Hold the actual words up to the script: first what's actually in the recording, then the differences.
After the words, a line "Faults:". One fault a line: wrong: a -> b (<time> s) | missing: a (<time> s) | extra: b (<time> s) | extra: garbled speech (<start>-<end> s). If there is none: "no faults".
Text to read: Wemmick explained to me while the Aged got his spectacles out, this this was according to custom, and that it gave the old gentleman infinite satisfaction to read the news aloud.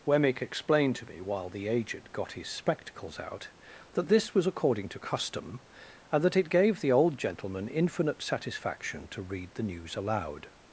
Wemmick explained to me while the Aged got his spectacles out, that this was according to custom, and that it gave the old gentleman infinite satisfaction to read the news aloud.
Faults:
wrong: this -> that (3.9 s)